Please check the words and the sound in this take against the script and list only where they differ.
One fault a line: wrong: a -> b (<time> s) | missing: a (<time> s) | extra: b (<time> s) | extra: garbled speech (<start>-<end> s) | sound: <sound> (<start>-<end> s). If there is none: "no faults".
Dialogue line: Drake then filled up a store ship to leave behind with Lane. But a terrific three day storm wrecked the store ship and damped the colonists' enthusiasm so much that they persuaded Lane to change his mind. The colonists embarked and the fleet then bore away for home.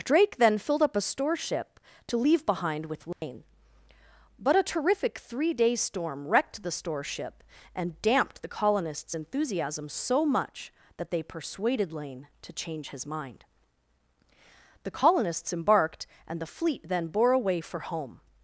sound: dropout (3.1-3.2 s)